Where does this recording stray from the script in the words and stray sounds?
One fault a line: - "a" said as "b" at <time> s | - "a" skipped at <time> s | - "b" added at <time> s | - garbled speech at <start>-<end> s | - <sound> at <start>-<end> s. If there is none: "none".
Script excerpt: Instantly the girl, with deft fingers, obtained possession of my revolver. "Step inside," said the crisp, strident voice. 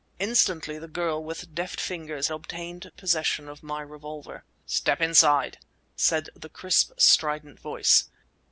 none